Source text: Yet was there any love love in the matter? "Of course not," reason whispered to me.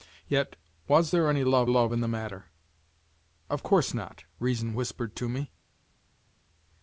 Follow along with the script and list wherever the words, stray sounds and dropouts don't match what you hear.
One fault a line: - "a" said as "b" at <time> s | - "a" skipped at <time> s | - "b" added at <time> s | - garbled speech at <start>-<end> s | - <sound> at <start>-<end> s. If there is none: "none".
none